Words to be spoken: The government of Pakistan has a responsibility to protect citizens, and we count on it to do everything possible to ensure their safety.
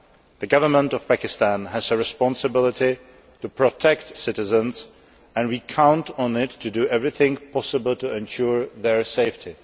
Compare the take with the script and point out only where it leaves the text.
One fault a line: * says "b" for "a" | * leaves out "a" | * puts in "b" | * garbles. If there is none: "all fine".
all fine